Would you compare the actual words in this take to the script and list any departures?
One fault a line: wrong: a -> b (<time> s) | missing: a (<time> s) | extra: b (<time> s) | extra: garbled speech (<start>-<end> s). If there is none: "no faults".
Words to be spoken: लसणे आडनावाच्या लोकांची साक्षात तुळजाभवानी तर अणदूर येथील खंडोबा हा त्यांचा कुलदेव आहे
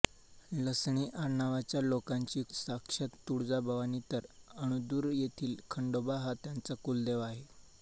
no faults